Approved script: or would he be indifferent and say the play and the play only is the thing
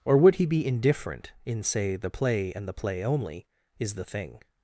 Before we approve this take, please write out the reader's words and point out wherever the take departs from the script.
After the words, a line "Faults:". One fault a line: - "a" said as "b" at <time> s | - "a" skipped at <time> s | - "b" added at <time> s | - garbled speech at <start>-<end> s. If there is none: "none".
or would he be indifferent in say the play and the play only is the thing
Faults:
- "and" said as "in" at 1.4 s